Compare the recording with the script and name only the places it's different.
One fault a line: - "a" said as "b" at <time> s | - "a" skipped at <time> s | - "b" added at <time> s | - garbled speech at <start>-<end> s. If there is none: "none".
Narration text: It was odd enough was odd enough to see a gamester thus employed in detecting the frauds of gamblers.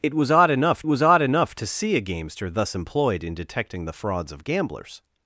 none